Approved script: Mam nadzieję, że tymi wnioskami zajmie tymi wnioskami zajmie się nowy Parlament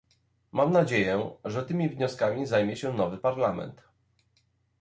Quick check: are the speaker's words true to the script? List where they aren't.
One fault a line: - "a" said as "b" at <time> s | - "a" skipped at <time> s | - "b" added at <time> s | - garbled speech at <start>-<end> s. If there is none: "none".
- "tymi wnioskami zajmie" skipped at 2.8 s